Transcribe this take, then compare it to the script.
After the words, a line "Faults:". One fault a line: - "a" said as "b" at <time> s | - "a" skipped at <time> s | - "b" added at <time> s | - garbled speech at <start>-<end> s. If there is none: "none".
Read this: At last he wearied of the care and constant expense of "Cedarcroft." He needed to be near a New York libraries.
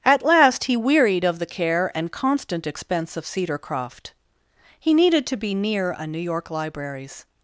At last he wearied of the care and constant expense of "Cedarcroft." He needed to be near a New York libraries.
Faults:
none